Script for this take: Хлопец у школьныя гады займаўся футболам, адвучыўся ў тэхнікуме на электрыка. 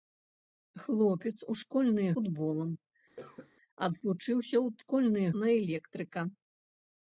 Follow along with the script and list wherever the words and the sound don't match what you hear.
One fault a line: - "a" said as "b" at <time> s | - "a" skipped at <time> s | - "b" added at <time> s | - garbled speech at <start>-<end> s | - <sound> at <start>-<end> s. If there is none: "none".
- "гады займаўся" skipped at 2.1 s
- cough at 3.2-3.5 s
- "тэхнікуме" said as "школьныя" at 4.8 s